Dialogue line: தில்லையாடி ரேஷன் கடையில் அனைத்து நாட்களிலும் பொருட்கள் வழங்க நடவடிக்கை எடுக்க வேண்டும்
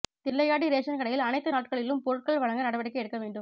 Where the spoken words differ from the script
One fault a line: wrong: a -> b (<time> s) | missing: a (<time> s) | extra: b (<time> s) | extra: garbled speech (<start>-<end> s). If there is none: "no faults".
no faults